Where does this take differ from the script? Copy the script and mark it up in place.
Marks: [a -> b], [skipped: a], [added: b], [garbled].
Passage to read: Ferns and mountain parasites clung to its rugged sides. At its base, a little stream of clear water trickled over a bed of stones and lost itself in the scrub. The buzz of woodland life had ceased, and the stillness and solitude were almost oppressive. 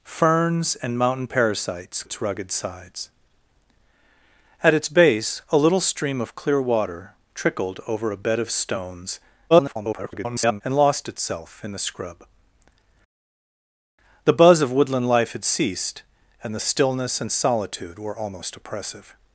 Ferns and mountain parasites [skipped: clung to] its rugged sides. At its base, a little stream of clear water trickled over a bed of stones [garbled] and lost itself in the scrub. The buzz of woodland life had ceased, and the stillness and solitude were almost oppressive.